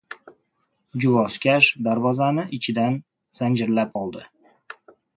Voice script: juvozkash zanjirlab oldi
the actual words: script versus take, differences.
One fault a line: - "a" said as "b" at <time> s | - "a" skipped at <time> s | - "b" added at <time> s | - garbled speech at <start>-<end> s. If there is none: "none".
- "darvozani ichidan" added at 1.9 s